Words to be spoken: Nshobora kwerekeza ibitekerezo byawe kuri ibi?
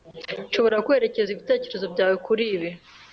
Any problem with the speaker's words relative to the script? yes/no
no